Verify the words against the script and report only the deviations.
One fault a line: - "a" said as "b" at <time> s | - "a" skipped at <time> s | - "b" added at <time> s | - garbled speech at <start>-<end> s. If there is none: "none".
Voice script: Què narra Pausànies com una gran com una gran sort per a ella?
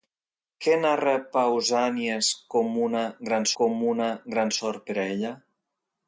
none